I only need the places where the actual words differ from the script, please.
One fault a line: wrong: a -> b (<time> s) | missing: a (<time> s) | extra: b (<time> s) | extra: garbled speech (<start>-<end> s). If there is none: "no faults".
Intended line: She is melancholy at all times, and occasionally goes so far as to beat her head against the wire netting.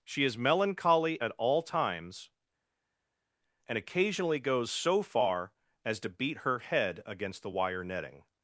no faults